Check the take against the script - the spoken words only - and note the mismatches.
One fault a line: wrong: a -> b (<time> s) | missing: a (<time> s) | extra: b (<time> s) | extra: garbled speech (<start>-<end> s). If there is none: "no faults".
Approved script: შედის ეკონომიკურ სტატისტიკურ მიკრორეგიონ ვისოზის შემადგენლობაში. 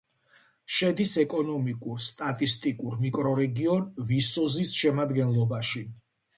no faults